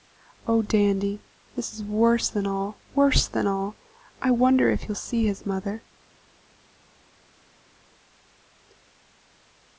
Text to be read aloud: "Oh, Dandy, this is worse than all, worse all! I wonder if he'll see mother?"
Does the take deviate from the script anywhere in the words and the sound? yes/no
yes